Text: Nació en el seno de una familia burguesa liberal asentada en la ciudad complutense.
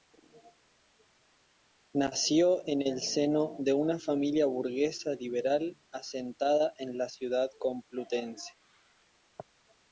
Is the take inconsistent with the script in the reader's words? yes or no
no